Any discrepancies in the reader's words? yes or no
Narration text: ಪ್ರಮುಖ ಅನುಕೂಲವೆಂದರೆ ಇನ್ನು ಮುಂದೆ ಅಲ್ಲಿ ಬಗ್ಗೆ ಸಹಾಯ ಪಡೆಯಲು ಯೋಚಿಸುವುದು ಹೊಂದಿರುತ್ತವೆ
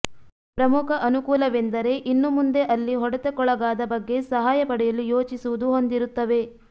yes